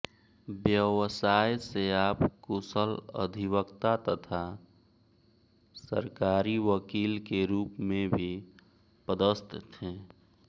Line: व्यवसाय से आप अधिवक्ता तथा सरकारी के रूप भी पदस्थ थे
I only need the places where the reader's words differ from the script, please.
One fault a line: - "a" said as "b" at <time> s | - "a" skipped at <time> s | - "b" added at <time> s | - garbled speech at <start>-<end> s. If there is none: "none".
- "कुशल" added at 2.4 s
- "वकील" added at 6.6 s
- "में" added at 7.8 s